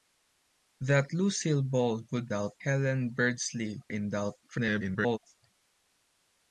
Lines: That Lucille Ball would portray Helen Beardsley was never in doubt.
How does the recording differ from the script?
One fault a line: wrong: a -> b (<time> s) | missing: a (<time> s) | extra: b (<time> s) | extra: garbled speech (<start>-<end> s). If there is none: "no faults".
wrong: portray -> doubt (2.3 s)
missing: was never (3.8 s)
extra: garbled speech (4.4-5.2 s)